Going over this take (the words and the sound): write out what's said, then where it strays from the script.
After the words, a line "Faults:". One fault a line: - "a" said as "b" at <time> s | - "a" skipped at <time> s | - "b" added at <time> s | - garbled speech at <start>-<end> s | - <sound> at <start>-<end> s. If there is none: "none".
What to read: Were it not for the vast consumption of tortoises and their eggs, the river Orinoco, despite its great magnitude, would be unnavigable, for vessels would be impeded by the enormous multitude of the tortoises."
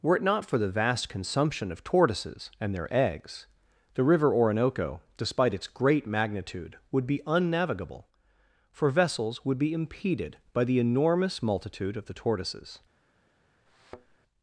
Were it not for the vast consumption of tortoises and their eggs, the river Orinoco, despite its great magnitude, would be unnavigable, for vessels would be impeded by the enormous multitude of the tortoises."
Faults:
- thud at 13.7-14.2 s